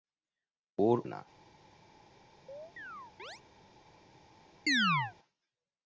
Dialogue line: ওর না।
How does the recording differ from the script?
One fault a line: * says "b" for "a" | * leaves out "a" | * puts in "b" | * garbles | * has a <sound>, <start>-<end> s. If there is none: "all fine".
* has a chirp, 2.5-3.4 s
* has a chirp, 4.7-5.1 s